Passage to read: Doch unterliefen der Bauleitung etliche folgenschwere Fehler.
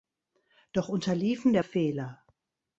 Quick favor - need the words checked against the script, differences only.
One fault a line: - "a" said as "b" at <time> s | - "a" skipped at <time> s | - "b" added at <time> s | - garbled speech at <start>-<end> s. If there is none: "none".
- "Bauleitung etliche folgenschwere" skipped at 1.6 s